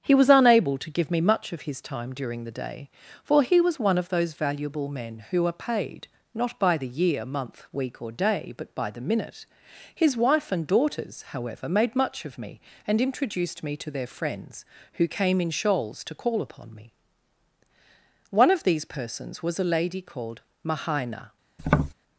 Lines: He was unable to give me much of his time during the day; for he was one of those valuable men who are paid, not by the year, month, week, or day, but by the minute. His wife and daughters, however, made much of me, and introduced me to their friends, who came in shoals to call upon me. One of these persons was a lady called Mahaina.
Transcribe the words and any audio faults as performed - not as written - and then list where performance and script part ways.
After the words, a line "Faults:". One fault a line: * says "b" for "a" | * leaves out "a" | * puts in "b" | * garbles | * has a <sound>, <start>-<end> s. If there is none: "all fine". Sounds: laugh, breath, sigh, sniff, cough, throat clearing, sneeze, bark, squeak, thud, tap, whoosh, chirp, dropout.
He was unable to give me much of his time during the day; for he was one of those valuable men who are paid, not by the year, month, week, or day, but by the minute. His wife and daughters, however, made much of me, and introduced me to their friends, who came in shoals to call upon me. One of these persons was a lady called Mahaina.
Faults:
* has a tap, 21.6-21.9 s